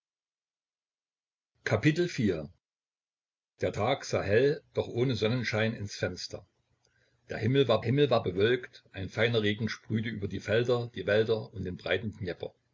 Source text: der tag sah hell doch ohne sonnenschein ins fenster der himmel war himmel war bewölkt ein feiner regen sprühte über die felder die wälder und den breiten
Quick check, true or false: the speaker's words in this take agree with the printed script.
true